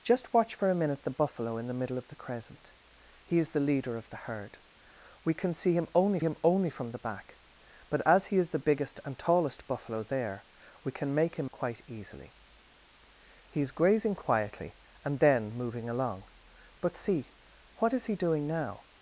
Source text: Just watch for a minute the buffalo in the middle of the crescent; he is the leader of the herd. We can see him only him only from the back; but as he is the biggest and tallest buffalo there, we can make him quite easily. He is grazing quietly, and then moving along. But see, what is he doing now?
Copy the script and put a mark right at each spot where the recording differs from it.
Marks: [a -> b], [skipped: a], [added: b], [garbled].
Just watch for a minute the buffalo in the middle of the crescent; he is the leader of the herd. We can see him only him only from the back; but as he is the biggest and tallest buffalo there, we can make him quite easily. He is grazing quietly, and then moving along. But see, what is he doing now?